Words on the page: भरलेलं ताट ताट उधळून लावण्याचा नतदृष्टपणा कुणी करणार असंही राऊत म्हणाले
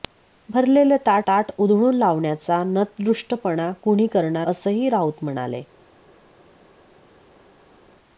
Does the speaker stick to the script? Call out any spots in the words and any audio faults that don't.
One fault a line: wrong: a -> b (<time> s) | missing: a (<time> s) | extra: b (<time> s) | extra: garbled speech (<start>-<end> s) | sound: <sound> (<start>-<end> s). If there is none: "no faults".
no faults